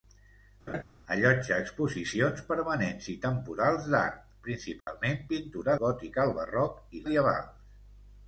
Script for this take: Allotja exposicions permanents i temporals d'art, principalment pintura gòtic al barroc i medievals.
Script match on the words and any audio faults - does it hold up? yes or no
no